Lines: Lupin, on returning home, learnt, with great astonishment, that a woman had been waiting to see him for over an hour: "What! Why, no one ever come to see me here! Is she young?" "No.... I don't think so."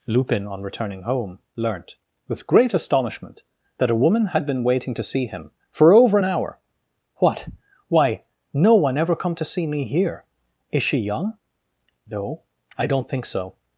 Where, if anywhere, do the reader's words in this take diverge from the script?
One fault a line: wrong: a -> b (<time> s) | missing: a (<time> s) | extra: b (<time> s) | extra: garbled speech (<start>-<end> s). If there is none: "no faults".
no faults